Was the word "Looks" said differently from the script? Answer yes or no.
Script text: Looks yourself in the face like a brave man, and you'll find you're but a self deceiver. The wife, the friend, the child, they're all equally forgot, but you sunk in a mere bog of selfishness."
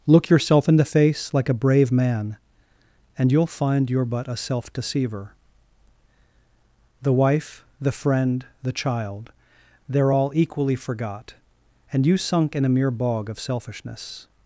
yes